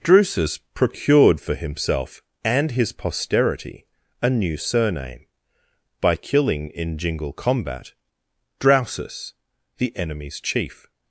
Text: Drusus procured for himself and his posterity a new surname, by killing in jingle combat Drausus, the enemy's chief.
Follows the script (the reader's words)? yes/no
yes